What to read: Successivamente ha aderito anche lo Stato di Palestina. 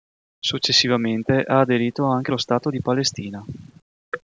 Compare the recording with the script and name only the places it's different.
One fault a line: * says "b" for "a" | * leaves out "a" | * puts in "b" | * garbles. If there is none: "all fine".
all fine